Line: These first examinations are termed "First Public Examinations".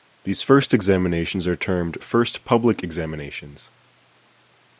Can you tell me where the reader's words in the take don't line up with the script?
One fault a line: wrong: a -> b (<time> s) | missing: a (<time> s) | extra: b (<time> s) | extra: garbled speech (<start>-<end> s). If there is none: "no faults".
no faults